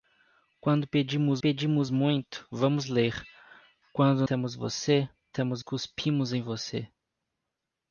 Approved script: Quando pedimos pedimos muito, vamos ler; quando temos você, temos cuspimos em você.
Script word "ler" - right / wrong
right